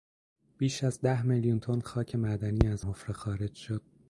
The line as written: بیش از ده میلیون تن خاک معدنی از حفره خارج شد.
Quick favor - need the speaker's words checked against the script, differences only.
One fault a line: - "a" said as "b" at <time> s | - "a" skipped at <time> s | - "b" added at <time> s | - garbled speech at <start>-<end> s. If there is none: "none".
none